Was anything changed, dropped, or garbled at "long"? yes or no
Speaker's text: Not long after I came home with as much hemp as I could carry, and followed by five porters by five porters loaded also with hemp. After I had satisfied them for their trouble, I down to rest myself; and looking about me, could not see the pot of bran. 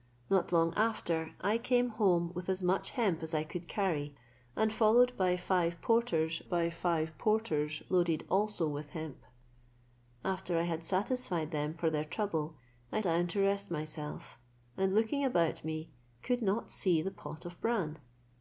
no